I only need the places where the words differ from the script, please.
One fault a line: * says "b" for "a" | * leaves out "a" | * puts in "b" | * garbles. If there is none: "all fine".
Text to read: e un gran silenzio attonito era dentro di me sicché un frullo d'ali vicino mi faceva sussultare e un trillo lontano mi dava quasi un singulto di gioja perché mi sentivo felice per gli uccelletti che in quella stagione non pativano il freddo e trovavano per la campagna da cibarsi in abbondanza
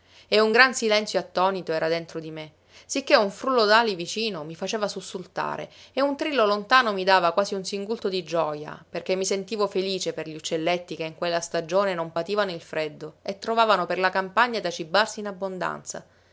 all fine